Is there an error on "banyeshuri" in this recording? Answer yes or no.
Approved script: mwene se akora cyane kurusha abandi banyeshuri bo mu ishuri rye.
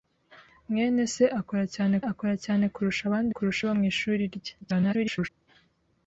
yes